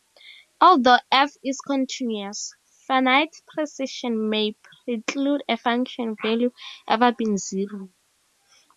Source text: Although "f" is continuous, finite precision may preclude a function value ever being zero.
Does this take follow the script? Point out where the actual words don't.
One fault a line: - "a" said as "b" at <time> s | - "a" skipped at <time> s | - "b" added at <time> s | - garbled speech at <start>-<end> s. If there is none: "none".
none